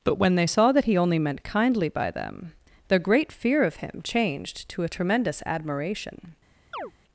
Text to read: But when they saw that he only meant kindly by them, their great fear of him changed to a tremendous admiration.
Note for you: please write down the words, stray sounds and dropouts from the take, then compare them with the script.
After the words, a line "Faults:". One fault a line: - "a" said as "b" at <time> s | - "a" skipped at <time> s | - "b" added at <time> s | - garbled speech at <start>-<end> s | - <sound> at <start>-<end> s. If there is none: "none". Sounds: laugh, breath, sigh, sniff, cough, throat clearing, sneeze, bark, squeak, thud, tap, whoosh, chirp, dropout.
But when they saw that he only meant kindly by them, their great fear of him changed to a tremendous admiration.
Faults:
- chirp at 6.7-6.9 s